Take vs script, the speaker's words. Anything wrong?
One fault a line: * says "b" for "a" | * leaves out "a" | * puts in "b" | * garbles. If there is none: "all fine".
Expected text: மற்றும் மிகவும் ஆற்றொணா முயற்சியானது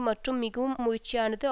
* leaves out "ஆற்றொணா"